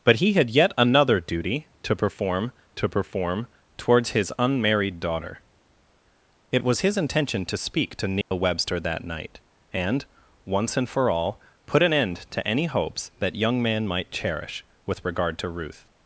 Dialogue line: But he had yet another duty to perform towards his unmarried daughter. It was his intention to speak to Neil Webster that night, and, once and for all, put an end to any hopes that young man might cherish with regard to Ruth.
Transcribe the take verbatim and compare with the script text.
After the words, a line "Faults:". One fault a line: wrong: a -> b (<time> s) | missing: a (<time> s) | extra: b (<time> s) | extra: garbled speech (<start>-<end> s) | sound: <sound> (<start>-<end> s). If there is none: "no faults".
But he had yet another duty to perform to perform towards his unmarried daughter. It was his intention to speak to Neil Webster that night, and, once and for all, put an end to any hopes that young man might cherish with regard to Ruth.
Faults:
extra: to perform (2.8 s)
sound: dropout (8.2-8.3 s)